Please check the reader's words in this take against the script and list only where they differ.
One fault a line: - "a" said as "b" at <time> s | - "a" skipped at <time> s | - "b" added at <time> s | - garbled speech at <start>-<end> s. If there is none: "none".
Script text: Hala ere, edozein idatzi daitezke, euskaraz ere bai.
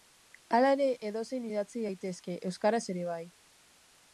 none